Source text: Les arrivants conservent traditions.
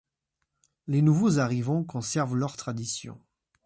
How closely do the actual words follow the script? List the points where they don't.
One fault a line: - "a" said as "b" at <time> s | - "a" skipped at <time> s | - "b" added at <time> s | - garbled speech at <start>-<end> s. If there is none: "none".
- "nouveaux" added at 1.0 s
- "leurs" added at 2.4 s